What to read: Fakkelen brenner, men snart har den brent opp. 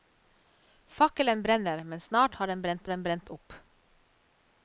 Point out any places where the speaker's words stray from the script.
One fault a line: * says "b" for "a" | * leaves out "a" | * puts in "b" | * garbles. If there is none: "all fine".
* puts in "den brent"